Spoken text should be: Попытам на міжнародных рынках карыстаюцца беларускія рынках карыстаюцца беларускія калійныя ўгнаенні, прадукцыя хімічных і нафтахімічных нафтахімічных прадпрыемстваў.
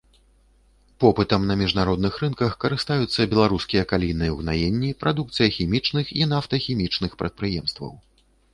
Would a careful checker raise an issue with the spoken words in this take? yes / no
yes